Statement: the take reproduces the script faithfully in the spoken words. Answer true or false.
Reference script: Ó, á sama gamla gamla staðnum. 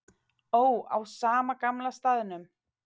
false